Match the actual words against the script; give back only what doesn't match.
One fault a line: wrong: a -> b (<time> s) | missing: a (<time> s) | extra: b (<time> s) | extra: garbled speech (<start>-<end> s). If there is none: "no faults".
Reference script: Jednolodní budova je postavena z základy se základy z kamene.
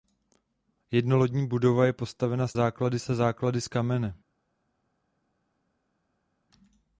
no faults